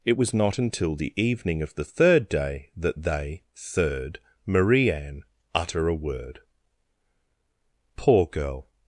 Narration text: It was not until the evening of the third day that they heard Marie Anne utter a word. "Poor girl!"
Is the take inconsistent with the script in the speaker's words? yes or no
yes